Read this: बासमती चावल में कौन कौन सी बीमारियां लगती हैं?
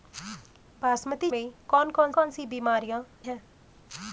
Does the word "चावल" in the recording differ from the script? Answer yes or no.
yes